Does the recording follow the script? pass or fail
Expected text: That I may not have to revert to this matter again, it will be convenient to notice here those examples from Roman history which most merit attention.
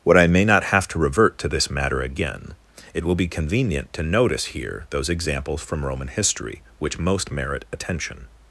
fail